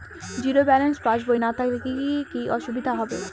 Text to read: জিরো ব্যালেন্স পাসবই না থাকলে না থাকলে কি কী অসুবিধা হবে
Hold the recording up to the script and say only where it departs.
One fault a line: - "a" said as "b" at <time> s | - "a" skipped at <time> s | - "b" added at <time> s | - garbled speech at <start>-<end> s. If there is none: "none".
- "না থাকলে" skipped at 1.8 s